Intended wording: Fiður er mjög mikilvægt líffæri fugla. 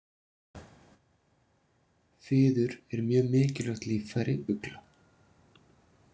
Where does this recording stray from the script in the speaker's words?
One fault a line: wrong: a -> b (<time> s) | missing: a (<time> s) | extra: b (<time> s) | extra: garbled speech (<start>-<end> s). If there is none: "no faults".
no faults